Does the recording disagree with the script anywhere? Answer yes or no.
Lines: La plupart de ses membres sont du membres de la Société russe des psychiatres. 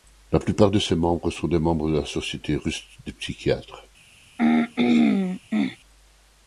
yes